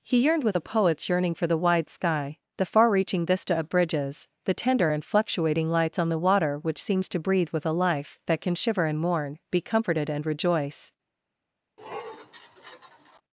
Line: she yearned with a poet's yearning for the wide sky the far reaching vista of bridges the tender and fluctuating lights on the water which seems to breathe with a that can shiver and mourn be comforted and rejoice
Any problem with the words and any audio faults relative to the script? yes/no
yes